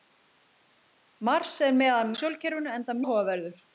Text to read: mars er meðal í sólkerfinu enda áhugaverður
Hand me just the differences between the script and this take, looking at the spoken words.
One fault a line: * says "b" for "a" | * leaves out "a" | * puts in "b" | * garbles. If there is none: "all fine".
all fine